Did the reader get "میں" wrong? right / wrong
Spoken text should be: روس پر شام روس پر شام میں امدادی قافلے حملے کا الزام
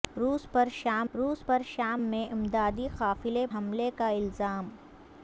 right